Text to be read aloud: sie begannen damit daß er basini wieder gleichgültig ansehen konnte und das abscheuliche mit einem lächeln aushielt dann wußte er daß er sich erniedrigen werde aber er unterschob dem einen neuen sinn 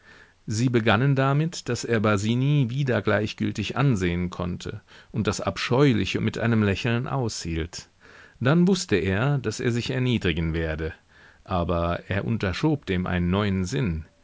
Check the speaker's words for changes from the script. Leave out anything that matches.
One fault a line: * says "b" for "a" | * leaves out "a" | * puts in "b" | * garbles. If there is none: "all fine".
all fine